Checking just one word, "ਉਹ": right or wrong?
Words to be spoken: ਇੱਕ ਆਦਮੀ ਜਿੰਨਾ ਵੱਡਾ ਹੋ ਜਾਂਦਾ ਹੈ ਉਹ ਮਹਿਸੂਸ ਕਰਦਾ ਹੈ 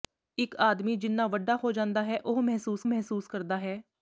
right